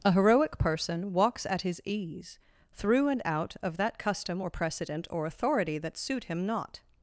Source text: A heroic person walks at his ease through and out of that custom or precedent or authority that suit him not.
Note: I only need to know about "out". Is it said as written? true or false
true